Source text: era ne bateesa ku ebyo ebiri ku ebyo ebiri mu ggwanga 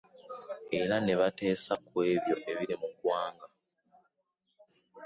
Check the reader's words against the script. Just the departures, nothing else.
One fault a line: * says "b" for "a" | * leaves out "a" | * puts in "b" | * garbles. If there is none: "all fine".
* leaves out "ku ebyo ebiri"